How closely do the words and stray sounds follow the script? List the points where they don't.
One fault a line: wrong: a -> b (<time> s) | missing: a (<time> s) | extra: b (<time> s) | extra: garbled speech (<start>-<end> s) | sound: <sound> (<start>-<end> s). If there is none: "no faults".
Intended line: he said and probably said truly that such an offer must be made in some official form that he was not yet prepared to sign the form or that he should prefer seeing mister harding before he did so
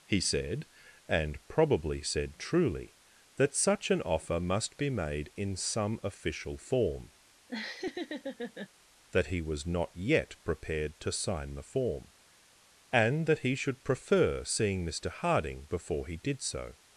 sound: laugh (7.5-8.7 s)
wrong: or -> and (12.9 s)